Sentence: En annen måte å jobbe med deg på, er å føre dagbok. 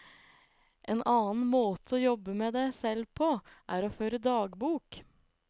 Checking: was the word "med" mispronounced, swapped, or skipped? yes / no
no